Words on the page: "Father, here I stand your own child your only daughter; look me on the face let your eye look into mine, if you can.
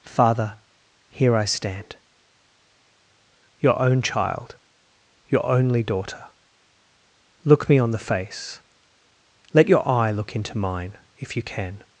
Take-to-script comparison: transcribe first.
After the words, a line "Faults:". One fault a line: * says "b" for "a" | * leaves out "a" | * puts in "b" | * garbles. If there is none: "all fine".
"Father, here I stand your own child your only daughter; look me on the face let your eye look into mine, if you can.
Faults:
all fine